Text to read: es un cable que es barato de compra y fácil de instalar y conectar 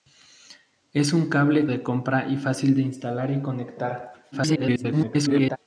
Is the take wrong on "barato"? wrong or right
wrong